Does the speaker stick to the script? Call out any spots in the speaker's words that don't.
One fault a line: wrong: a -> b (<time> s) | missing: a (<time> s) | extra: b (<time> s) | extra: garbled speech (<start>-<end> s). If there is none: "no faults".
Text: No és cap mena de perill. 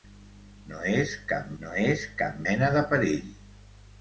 extra: no és cap (1.6 s)